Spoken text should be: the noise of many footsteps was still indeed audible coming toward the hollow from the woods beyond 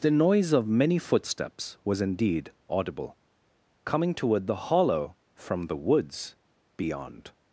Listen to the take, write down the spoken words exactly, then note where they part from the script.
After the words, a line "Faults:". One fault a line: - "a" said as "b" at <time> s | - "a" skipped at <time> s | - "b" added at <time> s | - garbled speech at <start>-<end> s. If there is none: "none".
the noise of many footsteps was indeed audible coming toward the hollow from the woods beyond
Faults:
- "still" skipped at 2.0 s